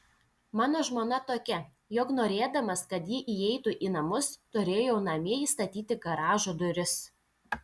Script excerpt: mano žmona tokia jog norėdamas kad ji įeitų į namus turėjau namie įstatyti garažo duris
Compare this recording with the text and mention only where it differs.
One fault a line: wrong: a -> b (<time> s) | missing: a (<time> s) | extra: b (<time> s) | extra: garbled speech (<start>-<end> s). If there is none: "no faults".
no faults